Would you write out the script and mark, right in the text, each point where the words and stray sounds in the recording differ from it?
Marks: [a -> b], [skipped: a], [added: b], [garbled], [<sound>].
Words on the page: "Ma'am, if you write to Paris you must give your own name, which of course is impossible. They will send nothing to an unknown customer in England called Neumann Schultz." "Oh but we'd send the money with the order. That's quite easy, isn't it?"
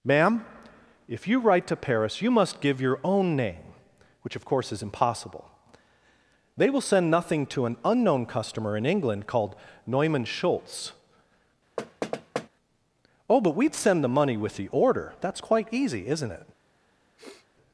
"Ma'am, if you write to Paris you must give your own name, which of course is impossible. They will send nothing to an unknown customer in England called Neumann Schultz." [thud] "Oh but we'd send the money with the order. That's quite easy, isn't it?" [sniff]